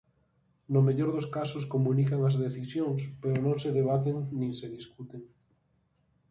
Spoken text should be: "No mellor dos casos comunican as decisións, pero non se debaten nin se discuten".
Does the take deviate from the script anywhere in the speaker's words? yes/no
no